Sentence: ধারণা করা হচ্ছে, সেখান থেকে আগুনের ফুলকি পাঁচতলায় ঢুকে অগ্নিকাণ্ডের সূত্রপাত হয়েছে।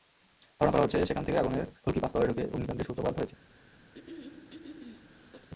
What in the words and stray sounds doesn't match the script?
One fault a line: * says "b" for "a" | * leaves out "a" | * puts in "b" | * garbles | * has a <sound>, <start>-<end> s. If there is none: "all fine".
* has a throat clearing, 3.9-5.5 s